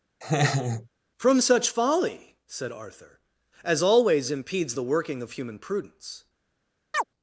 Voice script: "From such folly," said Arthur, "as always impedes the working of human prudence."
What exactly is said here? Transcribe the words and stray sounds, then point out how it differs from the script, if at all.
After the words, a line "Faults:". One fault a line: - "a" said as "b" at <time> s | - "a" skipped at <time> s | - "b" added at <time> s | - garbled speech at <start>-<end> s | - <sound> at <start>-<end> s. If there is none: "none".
"From such folly," said Arthur, "as always impedes the working of human prudence."
Faults:
- laugh at 0.2-0.9 s
- chirp at 6.9-7.0 s